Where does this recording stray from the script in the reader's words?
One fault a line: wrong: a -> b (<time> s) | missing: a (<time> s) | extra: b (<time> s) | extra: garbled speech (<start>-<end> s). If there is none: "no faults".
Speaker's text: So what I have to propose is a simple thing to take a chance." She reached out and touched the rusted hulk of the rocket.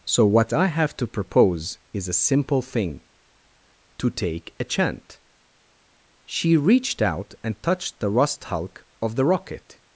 wrong: chance -> chant (4.6 s)
wrong: rusted -> rust (8.1 s)